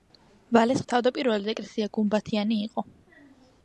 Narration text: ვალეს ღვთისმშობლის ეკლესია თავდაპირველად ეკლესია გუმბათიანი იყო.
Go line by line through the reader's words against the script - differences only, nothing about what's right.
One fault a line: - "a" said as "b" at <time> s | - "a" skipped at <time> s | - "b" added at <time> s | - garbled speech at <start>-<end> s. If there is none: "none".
- "ღვთისმშობლის ეკლესია" skipped at 0.8 s